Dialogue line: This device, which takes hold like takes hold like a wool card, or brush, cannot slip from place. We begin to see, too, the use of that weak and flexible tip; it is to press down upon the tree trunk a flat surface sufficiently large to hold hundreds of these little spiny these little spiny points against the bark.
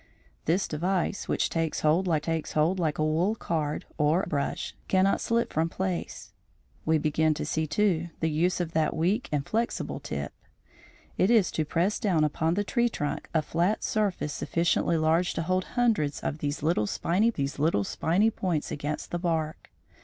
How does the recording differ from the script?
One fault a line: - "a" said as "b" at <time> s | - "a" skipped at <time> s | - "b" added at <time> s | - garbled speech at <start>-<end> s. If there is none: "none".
none